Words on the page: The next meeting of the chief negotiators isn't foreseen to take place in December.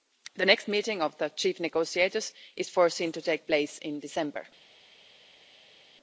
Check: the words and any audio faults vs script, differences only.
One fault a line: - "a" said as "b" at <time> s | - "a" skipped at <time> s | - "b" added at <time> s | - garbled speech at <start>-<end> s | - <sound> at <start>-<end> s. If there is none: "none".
- "isn't" said as "is" at 2.6 s